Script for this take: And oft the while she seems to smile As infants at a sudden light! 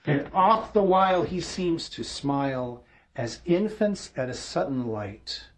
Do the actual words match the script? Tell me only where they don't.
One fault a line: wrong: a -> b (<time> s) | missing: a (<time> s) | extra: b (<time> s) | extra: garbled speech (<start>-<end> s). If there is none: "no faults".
wrong: she -> he (1.2 s)